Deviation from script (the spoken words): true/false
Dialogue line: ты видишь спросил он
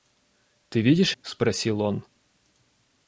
false